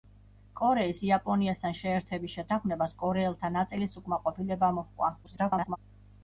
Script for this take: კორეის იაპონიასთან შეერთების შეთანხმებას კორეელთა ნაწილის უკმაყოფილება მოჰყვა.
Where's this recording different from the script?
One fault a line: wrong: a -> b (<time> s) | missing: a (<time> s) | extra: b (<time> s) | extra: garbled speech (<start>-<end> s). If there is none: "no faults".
extra: garbled speech (5.2-5.8 s)